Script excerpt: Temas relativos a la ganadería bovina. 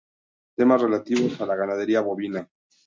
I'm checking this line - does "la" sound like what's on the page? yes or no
yes